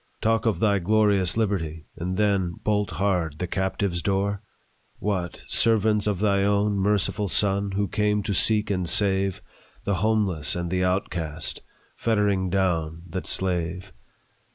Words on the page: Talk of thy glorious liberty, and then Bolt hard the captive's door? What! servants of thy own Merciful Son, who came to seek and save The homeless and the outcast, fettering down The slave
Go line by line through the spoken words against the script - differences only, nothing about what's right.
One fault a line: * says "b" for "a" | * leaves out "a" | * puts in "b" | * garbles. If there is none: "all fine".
all fine